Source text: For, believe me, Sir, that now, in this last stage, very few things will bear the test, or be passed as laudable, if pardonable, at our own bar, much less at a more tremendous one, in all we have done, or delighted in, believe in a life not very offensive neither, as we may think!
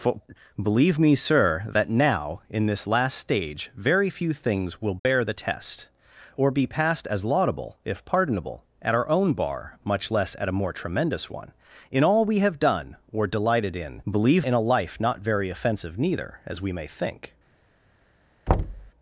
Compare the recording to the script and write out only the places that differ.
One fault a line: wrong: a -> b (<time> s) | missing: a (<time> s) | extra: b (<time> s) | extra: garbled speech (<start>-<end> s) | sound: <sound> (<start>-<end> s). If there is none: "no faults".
sound: dropout (5.0-5.1 s)
sound: thud (18.5-18.9 s)